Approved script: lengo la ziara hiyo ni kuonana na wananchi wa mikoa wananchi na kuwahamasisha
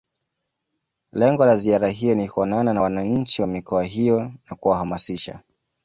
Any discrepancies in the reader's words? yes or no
yes